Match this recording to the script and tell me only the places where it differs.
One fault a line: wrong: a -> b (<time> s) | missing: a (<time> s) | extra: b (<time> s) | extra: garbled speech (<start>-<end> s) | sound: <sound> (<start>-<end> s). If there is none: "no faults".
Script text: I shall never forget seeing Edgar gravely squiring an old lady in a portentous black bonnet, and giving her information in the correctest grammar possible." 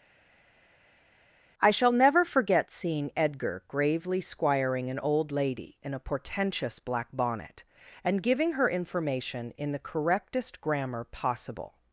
no faults